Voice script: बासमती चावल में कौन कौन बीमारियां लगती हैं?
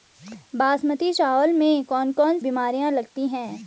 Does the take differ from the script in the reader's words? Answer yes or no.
no